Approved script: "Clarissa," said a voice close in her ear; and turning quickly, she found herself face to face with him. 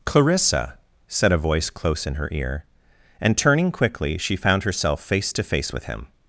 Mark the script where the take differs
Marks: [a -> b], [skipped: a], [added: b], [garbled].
"Clarissa," said a voice close in her ear; and turning quickly, she found herself face to face with him.